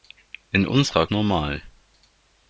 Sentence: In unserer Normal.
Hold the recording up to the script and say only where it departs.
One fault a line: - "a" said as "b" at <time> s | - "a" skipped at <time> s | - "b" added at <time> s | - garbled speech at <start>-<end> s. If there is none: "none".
none